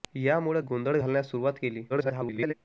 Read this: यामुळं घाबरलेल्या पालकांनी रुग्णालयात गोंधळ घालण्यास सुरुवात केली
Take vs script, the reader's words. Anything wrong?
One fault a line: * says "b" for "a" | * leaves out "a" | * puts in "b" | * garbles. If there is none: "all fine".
* leaves out "घाबरलेल्या पालकांनी रुग्णालयात"
* garbles